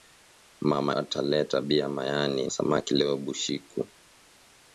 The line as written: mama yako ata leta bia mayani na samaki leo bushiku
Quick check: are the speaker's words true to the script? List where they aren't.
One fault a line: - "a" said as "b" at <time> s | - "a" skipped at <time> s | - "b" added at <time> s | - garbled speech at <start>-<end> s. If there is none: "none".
- "yako" skipped at 0.9 s
- "na" skipped at 2.5 s